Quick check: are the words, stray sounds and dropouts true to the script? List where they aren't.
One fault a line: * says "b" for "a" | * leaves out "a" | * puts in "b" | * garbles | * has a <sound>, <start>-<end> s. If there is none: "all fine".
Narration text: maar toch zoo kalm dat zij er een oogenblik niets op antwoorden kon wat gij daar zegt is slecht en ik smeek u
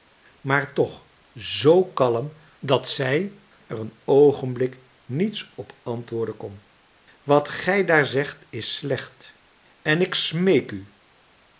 all fine